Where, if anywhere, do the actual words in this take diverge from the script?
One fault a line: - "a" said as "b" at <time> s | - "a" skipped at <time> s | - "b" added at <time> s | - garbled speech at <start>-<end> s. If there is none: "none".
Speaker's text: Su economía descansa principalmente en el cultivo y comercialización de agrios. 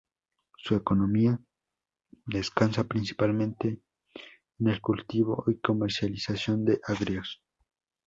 none